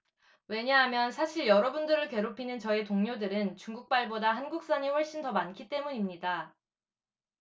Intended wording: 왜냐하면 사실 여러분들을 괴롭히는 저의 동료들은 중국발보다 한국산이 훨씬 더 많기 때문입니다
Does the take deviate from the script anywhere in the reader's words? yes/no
no